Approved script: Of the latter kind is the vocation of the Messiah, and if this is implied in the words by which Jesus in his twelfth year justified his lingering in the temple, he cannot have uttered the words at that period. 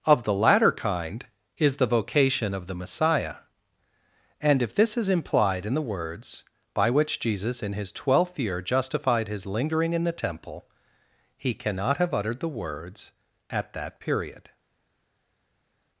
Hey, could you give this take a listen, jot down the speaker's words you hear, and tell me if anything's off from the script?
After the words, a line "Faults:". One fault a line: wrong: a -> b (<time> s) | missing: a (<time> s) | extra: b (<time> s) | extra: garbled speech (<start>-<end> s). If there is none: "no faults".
Of the latter kind is the vocation of the Messiah, and if this is implied in the words by which Jesus in his twelfth year justified his lingering in the temple, he cannot have uttered the words at that period.
Faults:
no faults